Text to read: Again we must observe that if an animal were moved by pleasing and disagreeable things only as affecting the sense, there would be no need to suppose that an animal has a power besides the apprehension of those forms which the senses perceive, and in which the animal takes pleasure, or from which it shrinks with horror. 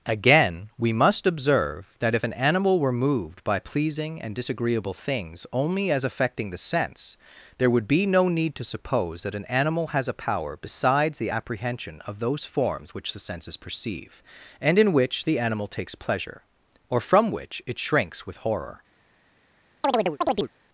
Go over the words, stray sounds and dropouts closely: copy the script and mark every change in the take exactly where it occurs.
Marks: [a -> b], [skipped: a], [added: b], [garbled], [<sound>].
Again we must observe that if an animal were moved by pleasing and disagreeable things only as affecting the sense, there would be no need to suppose that an animal has a power besides the apprehension of those forms which the senses perceive, and in which the animal takes pleasure, or from which it shrinks with horror. [chirp]